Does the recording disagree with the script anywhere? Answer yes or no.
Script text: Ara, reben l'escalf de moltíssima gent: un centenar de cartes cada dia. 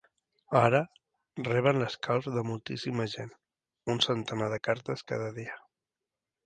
no